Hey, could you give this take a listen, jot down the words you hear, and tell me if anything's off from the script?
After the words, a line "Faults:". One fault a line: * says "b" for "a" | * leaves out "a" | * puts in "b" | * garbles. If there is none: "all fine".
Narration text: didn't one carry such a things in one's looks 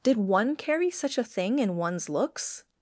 did one carry such a thing in one's looks
Faults:
* says "did" for "didn't"
* says "thing" for "things"